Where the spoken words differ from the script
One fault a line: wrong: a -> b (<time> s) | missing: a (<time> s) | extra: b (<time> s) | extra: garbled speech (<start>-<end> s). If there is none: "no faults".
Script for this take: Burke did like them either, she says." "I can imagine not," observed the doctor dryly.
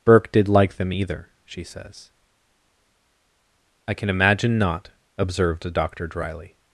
no faults